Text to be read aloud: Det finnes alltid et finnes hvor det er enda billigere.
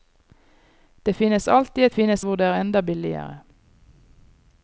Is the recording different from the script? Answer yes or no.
no